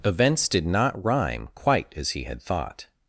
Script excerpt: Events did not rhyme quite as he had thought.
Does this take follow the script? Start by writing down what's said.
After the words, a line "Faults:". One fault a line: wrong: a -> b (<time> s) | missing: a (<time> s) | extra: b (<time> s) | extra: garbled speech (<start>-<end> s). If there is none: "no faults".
Events did not rhyme quite as he had thought.
Faults:
no faults